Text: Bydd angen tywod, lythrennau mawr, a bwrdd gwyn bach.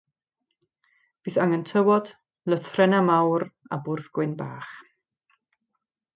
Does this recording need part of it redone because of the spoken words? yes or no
no